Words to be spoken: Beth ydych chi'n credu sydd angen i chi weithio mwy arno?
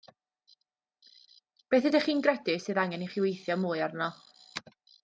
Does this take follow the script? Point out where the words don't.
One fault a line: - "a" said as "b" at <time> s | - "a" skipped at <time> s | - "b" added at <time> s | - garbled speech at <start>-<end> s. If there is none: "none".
none